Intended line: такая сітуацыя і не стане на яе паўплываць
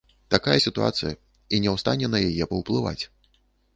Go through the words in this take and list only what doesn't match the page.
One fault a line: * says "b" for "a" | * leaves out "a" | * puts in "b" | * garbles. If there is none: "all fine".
* puts in "ў"